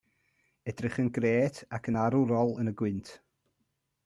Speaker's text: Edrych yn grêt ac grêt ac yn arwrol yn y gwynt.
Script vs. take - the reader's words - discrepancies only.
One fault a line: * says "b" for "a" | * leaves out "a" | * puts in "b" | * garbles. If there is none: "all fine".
* leaves out "grêt ac"